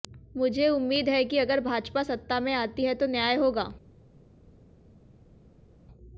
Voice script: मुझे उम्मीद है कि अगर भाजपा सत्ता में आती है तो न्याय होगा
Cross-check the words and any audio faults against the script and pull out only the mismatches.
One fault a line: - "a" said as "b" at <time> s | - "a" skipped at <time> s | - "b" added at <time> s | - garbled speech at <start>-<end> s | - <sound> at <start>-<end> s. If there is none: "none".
none